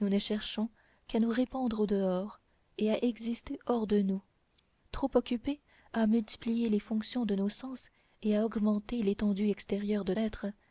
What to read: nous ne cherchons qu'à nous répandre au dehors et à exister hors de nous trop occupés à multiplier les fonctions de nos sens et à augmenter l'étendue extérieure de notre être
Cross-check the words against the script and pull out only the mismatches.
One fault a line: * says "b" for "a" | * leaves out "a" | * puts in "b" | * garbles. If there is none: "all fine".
* leaves out "notre"